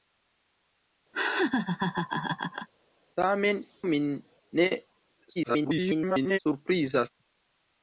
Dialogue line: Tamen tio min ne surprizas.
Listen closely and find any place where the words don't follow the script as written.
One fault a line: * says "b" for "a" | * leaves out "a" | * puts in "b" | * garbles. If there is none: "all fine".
* leaves out "tio"
* garbles